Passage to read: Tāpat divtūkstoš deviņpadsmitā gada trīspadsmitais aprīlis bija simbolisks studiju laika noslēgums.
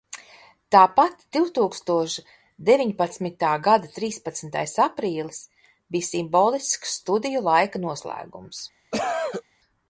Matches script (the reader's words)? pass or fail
pass